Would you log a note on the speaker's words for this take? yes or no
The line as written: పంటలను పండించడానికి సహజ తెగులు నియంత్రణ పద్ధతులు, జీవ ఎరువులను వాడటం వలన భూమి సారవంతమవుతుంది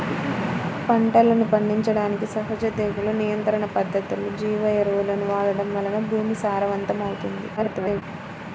yes